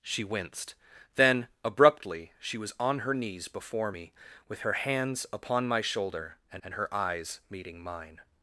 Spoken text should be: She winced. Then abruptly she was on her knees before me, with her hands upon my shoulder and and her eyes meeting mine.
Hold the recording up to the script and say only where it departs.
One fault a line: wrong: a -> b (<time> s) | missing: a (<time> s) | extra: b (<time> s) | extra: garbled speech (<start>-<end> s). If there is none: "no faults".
no faults